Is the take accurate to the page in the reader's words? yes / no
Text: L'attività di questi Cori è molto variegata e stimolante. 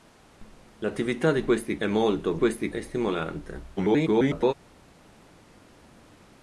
no